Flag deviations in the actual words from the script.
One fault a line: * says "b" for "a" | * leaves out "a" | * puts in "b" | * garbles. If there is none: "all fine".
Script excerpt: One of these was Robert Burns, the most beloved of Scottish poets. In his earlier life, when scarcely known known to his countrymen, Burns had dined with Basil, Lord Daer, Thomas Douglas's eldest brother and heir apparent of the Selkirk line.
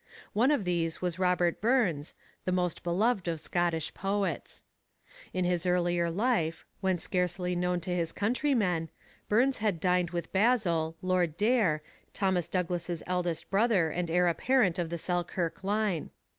* leaves out "known"